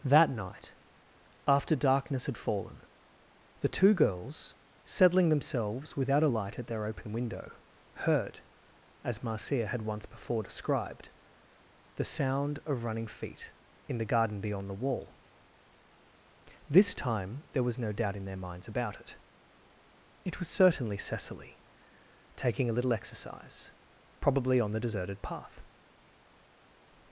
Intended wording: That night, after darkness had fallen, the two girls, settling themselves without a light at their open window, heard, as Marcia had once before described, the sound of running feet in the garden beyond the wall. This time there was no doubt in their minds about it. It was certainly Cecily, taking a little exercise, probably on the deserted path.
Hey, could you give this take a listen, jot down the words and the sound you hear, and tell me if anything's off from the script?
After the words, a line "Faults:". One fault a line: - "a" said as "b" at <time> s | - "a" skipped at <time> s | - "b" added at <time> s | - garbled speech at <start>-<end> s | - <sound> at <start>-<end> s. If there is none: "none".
That night, after darkness had fallen, the two girls, settling themselves without a light at their open window, heard, as Marcia had once before described, the sound of running feet in the garden beyond the wall. This time there was no doubt in their minds about it. It was certainly Cecily, taking a little exercise, probably on the deserted path.
Faults:
none